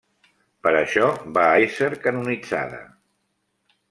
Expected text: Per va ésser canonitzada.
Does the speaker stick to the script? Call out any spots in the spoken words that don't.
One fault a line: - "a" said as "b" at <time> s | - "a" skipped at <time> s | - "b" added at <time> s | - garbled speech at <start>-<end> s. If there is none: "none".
- "això" added at 0.8 s